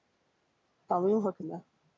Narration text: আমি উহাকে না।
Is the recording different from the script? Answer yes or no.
no